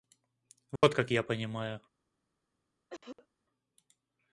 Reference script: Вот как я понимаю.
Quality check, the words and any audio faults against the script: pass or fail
fail